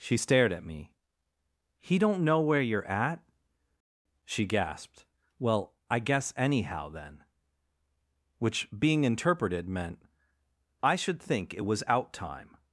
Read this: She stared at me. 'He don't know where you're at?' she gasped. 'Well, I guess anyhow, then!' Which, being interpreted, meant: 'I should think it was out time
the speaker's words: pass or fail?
pass